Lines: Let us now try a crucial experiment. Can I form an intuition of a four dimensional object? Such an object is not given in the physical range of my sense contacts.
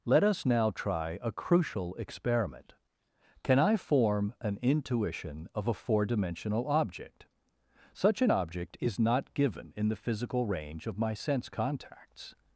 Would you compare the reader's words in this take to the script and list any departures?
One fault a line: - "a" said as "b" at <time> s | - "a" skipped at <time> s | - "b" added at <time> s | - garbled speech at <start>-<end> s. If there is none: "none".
none